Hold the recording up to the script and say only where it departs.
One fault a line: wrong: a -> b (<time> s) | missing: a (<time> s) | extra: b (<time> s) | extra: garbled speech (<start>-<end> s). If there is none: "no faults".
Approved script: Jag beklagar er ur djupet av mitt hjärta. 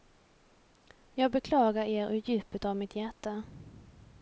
no faults